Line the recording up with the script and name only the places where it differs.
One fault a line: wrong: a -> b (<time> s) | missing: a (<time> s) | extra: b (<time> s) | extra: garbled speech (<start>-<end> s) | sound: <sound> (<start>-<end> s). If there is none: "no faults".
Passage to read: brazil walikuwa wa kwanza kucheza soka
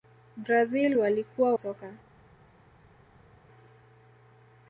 missing: wa kwanza kucheza (1.5 s)